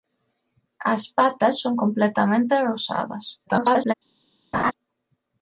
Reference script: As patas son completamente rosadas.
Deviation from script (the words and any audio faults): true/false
true